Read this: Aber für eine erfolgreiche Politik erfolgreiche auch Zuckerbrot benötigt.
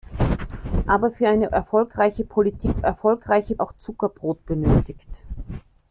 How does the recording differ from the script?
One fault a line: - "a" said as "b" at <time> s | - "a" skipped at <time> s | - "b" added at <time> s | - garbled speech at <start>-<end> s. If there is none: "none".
none